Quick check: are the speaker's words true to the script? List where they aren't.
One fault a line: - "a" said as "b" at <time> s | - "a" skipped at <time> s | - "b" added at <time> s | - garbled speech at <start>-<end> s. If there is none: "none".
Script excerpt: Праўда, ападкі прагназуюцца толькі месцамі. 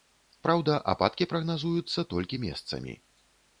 none